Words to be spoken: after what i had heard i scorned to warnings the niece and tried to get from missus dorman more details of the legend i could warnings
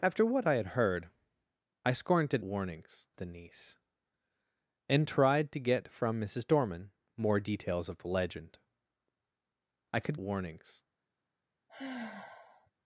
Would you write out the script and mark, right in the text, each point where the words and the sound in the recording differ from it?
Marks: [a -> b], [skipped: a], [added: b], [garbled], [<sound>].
after what i had heard i scorned to warnings the niece and tried to get from missus dorman more details of the legend i could warnings [sigh]